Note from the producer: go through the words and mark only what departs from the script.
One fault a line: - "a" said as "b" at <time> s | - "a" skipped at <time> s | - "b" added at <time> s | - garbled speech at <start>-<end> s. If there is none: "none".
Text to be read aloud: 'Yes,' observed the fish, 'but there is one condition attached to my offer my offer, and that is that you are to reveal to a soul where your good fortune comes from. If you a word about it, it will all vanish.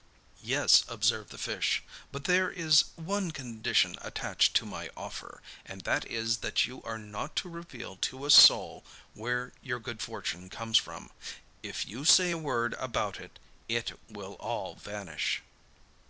- "my offer" skipped at 5.4 s
- "not" added at 7.0 s
- "say" added at 12.0 s